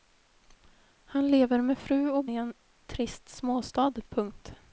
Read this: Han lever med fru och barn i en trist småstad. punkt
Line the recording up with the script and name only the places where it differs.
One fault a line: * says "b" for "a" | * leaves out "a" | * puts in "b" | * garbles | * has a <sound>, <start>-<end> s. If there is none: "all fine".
* leaves out "barn"